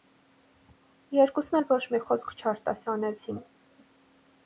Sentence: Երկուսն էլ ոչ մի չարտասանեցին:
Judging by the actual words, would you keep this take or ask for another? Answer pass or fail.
fail